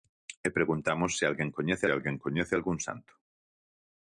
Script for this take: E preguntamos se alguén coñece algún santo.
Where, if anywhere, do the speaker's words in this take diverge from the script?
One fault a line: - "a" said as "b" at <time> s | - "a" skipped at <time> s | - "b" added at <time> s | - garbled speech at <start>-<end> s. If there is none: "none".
- "alguén coñece" added at 1.9 s